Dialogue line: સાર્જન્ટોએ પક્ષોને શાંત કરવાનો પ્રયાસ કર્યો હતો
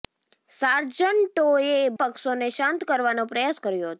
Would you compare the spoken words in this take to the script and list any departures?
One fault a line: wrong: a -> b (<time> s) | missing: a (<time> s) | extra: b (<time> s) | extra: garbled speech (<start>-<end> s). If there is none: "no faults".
no faults